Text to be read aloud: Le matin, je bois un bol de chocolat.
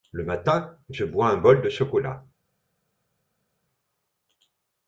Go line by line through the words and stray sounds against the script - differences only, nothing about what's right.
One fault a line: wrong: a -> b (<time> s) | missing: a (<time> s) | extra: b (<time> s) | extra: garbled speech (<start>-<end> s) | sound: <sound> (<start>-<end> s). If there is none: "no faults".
no faults